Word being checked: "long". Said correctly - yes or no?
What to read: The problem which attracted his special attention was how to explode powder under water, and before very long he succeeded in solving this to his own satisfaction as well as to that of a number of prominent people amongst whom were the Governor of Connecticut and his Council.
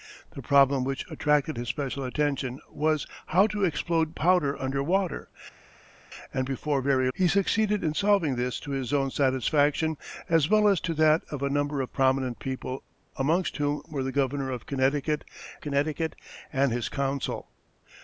no